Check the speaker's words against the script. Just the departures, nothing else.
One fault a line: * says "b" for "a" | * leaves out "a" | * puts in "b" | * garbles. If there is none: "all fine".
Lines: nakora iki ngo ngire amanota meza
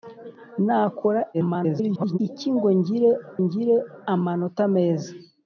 * garbles
* puts in "ngire"